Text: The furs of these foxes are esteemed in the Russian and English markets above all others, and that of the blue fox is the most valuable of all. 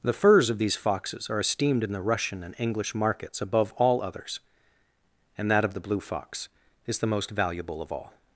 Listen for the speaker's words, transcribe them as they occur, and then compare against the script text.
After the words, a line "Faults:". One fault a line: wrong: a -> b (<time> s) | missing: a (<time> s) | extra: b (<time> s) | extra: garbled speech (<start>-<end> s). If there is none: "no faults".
The furs of these foxes are esteemed in the Russian and English markets above all others, and that of the blue fox is the most valuable of all.
Faults:
no faults